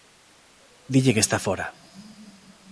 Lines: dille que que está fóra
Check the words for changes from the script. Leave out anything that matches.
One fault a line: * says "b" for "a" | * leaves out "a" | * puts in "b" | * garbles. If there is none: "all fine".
* leaves out "que"